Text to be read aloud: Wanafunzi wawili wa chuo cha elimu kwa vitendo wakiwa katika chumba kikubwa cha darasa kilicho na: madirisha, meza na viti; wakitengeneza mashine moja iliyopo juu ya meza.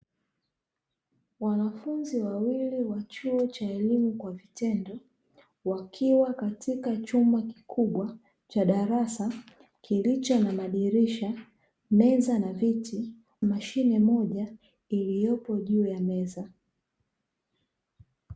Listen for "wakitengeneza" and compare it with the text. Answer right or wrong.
wrong